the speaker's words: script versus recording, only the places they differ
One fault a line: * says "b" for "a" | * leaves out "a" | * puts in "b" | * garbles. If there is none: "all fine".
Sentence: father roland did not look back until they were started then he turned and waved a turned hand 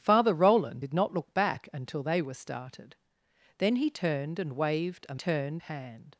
all fine